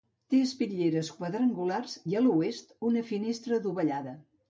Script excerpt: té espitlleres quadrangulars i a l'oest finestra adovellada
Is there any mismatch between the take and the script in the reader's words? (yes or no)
yes